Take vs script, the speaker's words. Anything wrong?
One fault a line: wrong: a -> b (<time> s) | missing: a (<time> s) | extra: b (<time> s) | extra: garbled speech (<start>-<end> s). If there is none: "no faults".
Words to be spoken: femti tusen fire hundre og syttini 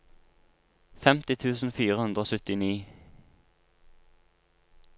no faults